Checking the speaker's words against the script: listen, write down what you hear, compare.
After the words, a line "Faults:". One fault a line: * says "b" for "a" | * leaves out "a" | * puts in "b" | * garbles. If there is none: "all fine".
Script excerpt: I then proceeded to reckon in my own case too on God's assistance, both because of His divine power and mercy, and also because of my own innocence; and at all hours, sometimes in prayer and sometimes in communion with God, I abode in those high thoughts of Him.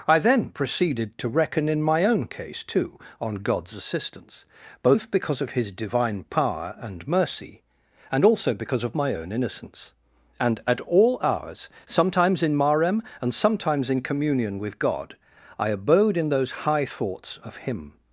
I then proceeded to reckon in my own case too on God's assistance, both because of His divine power and mercy, and also because of my own innocence; and at all hours, sometimes in marem and sometimes in communion with God, I abode in those high thoughts of Him.
Faults:
* says "marem" for "prayer"